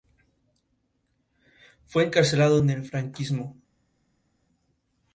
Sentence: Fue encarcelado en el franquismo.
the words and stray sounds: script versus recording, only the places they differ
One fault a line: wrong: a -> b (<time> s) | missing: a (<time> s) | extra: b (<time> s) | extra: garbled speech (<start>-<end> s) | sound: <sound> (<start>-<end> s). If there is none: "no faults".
no faults